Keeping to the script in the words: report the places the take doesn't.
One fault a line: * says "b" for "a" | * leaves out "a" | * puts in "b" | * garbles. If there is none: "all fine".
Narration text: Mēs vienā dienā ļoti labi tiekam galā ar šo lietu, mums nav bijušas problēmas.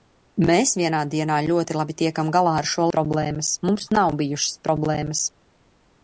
* says "problēmas" for "lietu"